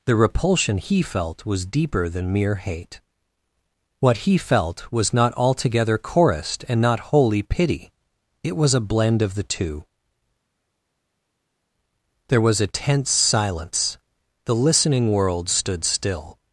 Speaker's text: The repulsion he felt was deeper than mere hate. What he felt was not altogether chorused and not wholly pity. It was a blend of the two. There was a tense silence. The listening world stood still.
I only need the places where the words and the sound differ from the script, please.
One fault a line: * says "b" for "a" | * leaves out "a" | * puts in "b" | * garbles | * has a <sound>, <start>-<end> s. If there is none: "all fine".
all fine